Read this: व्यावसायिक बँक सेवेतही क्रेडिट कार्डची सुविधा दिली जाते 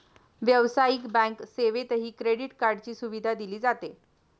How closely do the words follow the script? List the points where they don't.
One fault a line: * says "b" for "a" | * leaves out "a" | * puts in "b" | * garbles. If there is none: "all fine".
all fine